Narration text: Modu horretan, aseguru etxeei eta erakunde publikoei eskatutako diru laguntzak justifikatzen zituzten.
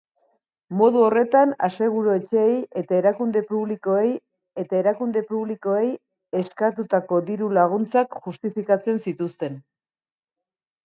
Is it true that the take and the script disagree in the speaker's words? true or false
true